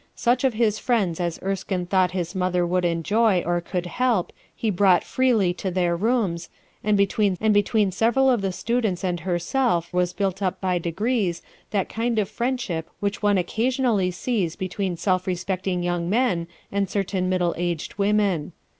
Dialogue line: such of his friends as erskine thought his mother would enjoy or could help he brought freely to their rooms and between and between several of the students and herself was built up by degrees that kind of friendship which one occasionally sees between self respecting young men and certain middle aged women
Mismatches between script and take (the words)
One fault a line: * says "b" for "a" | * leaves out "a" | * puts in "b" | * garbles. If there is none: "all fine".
all fine